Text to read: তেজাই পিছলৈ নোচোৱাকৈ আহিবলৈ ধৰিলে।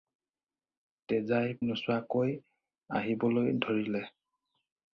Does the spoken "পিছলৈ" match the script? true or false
false